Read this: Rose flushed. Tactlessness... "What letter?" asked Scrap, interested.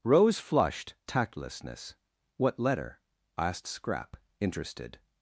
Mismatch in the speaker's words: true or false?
false